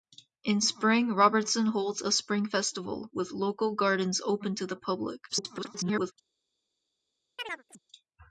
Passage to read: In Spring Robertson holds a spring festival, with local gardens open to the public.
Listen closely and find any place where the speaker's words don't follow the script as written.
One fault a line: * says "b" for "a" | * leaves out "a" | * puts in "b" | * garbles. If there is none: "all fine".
* garbles